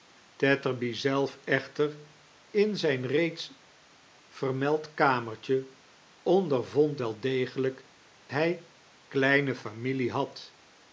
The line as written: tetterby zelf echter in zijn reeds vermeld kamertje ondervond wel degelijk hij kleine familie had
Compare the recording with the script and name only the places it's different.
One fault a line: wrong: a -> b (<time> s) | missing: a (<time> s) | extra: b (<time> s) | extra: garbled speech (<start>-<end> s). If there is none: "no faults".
no faults